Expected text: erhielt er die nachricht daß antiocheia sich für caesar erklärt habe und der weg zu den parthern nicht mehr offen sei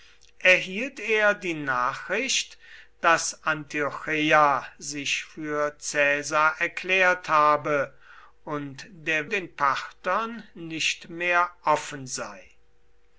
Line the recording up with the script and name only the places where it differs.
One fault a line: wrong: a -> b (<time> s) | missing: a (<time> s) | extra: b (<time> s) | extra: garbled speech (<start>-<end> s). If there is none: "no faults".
missing: weg zu (9.3 s)